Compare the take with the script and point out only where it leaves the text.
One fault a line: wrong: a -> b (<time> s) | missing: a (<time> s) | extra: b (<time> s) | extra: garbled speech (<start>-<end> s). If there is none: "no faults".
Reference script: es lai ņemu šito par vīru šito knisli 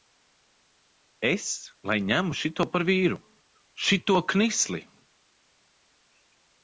no faults